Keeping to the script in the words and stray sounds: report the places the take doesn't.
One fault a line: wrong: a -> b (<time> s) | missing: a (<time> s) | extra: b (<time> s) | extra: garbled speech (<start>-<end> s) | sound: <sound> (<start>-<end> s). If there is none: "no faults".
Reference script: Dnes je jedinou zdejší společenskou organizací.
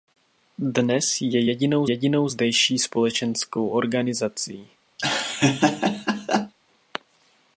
extra: jedinou (1.9 s)
sound: laugh (5.0-6.5 s)